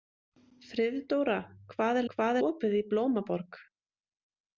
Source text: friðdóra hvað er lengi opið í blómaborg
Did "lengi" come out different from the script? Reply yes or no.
yes